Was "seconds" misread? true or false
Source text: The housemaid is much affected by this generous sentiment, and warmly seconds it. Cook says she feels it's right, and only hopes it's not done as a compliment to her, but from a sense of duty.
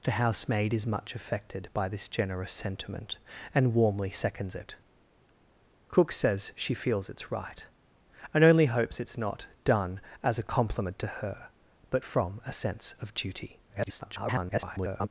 false